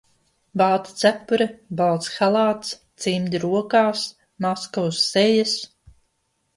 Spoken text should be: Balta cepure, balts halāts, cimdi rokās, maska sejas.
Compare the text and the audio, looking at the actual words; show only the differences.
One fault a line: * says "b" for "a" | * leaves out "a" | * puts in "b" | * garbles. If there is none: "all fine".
* puts in "uz"